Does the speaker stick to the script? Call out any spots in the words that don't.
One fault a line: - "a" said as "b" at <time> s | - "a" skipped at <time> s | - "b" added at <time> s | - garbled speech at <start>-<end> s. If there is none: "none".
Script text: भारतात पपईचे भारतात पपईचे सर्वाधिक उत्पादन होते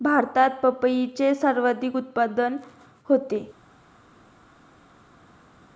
- "भारतात पपईचे" skipped at 1.3 s